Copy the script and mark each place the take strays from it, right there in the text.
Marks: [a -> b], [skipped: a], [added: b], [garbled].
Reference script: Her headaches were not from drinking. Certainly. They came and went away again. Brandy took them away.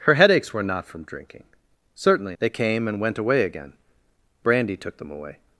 Her headaches were not from drinking. Certainly. They came and went away again. Brandy took them away.